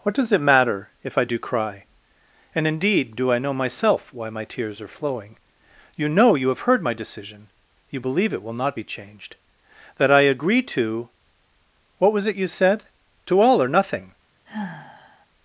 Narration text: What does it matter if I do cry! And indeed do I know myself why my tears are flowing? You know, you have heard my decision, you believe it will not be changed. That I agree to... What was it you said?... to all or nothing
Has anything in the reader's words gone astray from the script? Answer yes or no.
no